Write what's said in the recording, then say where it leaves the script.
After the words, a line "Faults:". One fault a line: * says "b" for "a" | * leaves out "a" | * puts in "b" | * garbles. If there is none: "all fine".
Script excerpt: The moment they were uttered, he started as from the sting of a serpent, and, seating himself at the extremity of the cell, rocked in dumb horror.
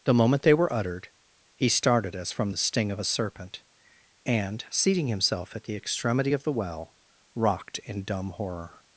The moment they were uttered, he started as from the sting of a serpent, and, seating himself at the extremity of the well, rocked in dumb horror.
Faults:
* says "well" for "cell"